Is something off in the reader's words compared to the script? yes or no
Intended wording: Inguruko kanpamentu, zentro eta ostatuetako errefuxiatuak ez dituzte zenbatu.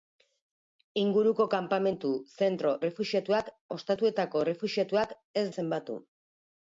yes